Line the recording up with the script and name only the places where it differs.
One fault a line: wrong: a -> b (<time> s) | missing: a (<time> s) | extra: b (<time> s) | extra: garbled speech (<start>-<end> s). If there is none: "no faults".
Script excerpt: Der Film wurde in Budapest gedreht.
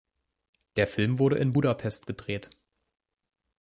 no faults